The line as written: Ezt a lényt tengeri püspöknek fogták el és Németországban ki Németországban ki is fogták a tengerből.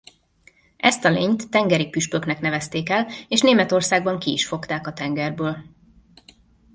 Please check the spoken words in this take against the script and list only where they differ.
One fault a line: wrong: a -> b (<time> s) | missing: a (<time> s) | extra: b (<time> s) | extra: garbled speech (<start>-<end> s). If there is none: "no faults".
wrong: fogták -> nevezték (2.4 s)
missing: Németországban ki (4.3 s)